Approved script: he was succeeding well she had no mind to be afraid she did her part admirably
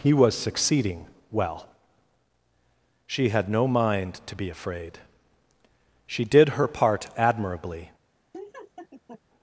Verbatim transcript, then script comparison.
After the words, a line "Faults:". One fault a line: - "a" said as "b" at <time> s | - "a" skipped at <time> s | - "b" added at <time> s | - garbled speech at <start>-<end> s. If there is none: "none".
he was succeeding well she had no mind to be afraid she did her part admirably
Faults:
none